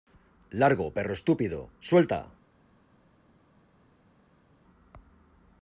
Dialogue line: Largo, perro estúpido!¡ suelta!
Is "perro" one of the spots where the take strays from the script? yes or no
no